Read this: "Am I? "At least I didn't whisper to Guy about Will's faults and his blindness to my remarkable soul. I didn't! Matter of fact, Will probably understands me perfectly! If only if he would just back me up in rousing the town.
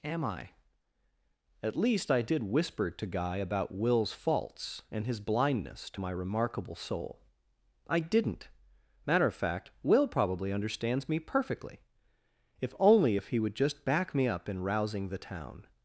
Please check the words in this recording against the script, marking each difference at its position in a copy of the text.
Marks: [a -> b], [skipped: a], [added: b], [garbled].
"Am I? "At least I [didn't -> did] whisper to Guy about Will's faults and his blindness to my remarkable soul. I didn't! Matter of fact, Will probably understands me perfectly! If only if he would just back me up in rousing the town.